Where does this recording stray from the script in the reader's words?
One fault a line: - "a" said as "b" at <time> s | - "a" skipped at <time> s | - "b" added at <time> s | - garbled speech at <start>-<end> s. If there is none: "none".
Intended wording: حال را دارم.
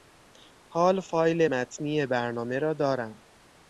- "فایل متنی برنامه" added at 1.0 s